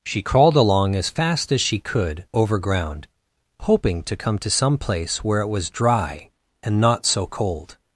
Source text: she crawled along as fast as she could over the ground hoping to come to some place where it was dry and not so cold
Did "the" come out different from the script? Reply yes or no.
yes